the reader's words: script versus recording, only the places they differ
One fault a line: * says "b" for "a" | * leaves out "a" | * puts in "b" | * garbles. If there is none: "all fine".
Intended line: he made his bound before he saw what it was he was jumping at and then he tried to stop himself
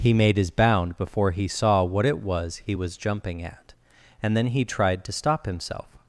all fine